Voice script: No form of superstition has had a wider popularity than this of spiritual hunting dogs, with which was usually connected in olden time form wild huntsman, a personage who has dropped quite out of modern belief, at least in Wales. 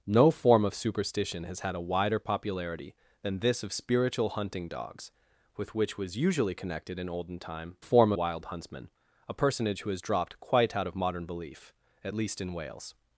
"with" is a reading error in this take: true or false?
false